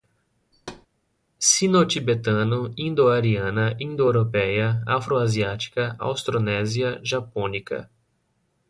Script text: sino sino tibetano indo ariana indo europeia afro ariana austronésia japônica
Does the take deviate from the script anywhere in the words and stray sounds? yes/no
yes